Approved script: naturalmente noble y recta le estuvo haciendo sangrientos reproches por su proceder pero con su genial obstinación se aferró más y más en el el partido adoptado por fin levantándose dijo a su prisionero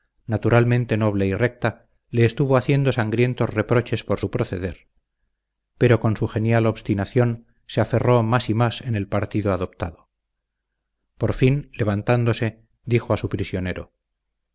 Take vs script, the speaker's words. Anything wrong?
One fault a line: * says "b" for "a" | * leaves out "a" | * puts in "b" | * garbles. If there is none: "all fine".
* leaves out "el"